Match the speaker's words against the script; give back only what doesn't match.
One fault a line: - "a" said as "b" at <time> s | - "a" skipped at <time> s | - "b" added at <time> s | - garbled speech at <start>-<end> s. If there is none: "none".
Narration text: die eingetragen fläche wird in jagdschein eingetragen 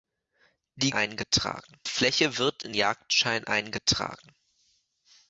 none